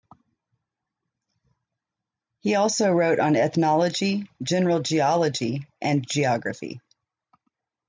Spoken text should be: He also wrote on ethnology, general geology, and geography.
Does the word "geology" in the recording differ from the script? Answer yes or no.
no